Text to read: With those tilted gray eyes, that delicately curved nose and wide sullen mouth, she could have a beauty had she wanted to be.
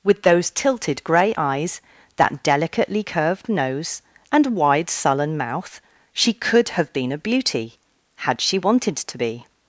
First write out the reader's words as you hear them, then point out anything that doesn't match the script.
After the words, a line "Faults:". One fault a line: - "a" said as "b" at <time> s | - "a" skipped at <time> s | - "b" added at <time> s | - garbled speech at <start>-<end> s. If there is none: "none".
With those tilted gray eyes, that delicately curved nose and wide sullen mouth, she could have been a beauty had she wanted to be.
Faults:
- "been" added at 6.9 s